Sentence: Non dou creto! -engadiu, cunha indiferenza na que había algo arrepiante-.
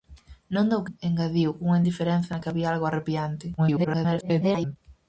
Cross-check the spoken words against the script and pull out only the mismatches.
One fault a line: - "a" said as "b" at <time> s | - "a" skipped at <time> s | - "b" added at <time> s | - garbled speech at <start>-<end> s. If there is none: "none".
- "creto" skipped at 0.8 s
- garbled speech at 3.6-4.8 s